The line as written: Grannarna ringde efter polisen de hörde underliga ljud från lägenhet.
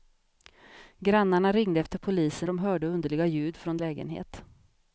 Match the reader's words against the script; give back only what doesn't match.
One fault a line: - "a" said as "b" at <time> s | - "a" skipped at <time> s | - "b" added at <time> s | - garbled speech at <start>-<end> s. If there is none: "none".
none